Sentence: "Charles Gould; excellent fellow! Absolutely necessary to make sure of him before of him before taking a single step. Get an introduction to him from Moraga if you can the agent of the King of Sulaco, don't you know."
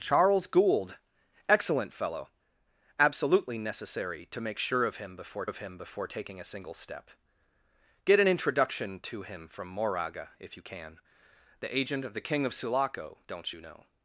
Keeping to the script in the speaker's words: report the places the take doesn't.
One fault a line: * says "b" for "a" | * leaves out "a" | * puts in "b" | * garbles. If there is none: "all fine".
all fine